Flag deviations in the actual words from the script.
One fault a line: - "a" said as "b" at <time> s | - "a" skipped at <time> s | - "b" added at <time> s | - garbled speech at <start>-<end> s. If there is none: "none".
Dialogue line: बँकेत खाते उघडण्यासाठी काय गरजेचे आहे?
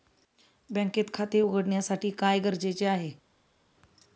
none